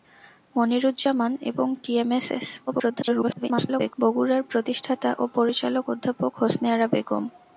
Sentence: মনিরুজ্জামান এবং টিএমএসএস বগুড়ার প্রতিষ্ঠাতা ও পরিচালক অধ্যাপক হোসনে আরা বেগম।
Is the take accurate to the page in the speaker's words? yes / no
no